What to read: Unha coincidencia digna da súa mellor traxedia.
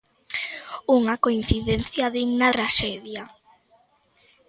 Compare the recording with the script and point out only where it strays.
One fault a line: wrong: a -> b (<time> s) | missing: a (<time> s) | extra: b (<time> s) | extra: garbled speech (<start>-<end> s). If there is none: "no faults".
missing: da súa mellor (2.5 s)